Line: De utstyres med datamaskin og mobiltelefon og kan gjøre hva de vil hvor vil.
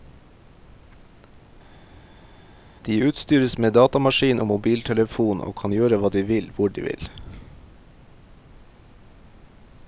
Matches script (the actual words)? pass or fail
fail